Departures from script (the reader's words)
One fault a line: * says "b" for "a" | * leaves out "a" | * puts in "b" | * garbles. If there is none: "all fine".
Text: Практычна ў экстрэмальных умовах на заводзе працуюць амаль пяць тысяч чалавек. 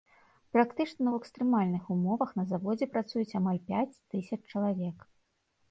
all fine